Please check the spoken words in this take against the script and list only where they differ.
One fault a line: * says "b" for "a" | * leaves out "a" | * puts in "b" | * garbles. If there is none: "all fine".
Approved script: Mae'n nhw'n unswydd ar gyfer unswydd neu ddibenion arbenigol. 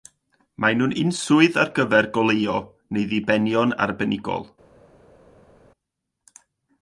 * says "goleuo" for "unswydd"